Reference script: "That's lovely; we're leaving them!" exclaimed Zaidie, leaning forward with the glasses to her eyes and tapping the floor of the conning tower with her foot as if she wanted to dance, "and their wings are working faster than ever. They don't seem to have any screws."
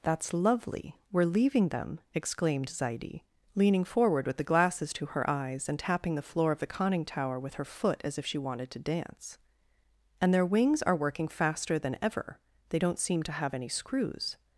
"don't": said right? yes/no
yes